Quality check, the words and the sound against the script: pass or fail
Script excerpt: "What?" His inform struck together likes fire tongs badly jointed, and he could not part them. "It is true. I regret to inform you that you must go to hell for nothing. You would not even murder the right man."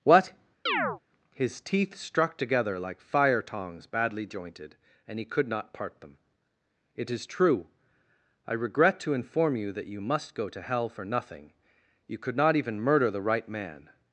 fail